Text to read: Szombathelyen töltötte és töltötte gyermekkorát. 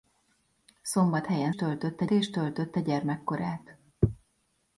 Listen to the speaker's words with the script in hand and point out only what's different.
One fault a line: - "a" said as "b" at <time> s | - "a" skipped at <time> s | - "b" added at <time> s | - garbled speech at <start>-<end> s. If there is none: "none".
none